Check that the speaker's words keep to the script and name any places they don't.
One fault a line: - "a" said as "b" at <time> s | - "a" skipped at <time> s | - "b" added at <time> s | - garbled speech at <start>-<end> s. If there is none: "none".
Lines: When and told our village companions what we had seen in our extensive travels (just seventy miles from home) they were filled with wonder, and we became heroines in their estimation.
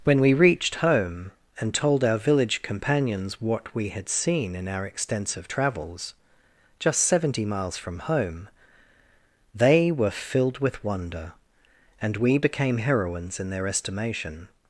- "we reached home" added at 0.2 s